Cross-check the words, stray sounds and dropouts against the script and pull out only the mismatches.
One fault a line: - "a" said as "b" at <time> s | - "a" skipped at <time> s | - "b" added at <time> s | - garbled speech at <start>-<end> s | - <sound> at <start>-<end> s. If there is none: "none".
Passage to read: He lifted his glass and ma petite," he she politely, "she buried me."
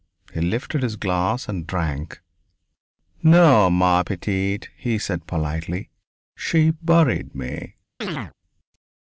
- "drank No" added at 1.7 s
- "she" said as "said" at 5.0 s
- chirp at 8.0-8.3 s